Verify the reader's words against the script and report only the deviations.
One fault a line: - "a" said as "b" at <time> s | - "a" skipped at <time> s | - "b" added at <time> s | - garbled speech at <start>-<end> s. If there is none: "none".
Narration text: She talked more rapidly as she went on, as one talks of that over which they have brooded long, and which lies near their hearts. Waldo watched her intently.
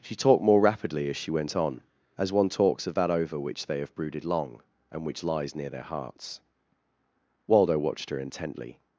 none